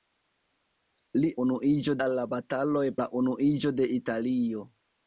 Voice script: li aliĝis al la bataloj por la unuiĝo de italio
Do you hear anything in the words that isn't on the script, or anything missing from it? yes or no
yes